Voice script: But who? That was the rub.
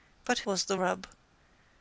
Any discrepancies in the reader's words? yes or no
yes